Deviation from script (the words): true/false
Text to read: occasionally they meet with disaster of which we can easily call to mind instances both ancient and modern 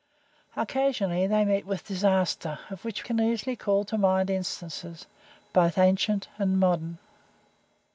true